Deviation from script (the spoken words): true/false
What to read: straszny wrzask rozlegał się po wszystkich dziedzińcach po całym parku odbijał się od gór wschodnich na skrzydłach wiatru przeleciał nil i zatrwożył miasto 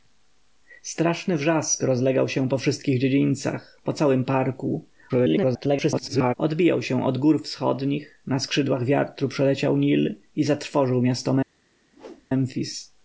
true